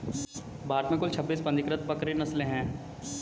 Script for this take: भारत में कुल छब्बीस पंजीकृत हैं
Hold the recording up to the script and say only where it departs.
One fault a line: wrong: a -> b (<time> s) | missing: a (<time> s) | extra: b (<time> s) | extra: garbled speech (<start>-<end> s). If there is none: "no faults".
extra: बकरी नस्लें (1.9 s)